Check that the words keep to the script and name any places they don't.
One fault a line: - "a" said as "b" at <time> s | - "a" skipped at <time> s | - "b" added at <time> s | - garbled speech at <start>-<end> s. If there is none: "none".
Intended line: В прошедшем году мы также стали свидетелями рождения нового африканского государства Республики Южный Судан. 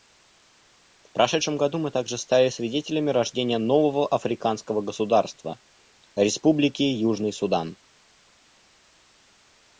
none